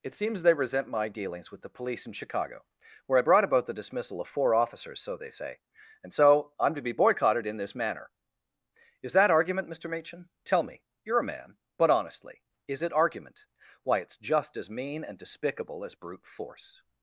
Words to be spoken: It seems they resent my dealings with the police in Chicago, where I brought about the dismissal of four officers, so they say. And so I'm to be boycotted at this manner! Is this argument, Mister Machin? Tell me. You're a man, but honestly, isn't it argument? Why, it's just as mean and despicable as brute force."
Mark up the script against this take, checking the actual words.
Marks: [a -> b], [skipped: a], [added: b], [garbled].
It seems they resent my dealings with the police in Chicago, where I brought about the dismissal of four officers, so they say. And so I'm to be boycotted [at -> in] this manner! Is [this -> that] argument, Mister Machin? Tell me. You're a man, but honestly, [isn't -> is] it argument? Why, it's just as mean and despicable as brute force."